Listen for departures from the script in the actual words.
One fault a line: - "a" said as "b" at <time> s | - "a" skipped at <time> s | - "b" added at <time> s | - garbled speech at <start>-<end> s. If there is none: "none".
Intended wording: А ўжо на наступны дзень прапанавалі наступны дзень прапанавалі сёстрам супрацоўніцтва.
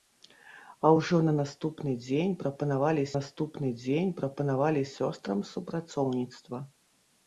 none